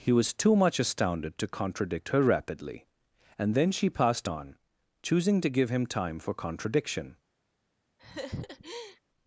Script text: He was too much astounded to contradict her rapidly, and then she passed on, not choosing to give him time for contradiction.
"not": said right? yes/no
no